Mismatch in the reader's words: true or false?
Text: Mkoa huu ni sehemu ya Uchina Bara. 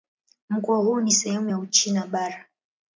false